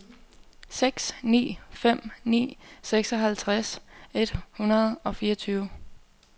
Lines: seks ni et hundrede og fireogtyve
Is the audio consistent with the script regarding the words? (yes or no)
no